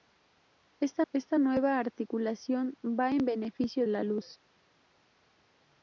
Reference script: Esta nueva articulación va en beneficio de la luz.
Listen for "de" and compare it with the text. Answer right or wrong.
wrong